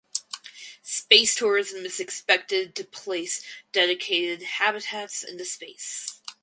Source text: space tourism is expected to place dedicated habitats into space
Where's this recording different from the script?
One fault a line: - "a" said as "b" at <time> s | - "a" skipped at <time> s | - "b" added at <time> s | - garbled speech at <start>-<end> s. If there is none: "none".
none